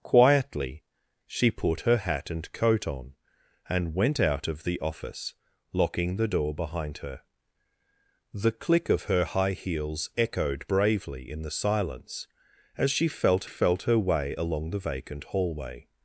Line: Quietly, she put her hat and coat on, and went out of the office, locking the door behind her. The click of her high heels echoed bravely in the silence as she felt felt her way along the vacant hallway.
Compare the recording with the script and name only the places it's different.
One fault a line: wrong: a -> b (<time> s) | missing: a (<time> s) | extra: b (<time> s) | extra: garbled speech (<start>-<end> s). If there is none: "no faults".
no faults